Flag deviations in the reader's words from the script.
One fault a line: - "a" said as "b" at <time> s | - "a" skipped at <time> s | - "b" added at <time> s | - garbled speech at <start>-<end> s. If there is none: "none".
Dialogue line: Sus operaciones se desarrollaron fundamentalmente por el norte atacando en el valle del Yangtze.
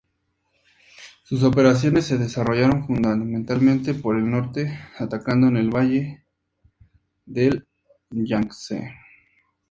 none